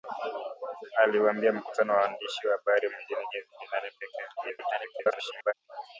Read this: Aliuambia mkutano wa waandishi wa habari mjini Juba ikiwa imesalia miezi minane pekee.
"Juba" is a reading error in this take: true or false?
true